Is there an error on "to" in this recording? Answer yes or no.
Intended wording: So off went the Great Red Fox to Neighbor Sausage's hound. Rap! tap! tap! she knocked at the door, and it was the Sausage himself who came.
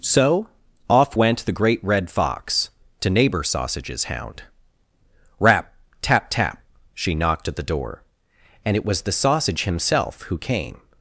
no